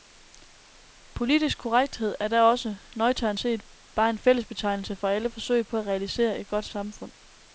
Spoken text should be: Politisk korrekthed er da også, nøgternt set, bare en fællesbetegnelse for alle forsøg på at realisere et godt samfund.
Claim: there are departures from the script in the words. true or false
false